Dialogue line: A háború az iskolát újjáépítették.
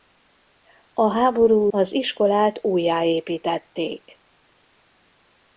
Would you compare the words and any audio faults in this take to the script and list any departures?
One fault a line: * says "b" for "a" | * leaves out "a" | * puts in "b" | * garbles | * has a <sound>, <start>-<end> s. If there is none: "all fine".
all fine